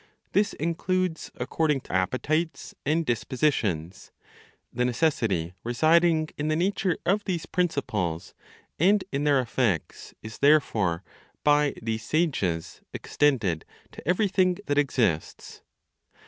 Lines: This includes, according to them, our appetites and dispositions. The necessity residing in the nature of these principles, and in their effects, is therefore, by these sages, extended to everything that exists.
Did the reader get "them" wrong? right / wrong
wrong